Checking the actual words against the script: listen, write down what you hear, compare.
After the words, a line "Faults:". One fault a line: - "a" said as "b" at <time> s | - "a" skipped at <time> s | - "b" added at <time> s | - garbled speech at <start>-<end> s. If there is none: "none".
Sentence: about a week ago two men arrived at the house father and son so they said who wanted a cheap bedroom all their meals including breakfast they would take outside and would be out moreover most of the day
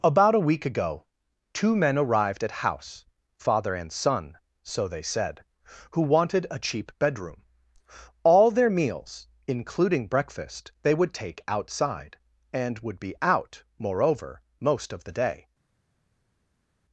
about a week ago two men arrived at house father and son so they said who wanted a cheap bedroom all their meals including breakfast they would take outside and would be out moreover most of the day
Faults:
- "the" skipped at 2.5 s